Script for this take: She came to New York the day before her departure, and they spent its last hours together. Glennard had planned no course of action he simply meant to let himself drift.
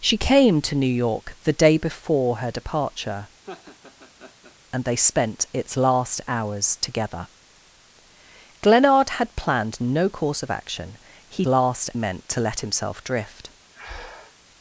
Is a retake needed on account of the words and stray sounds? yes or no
yes